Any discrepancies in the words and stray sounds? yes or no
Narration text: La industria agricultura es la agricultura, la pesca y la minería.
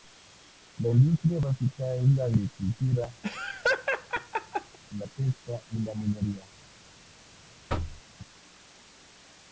yes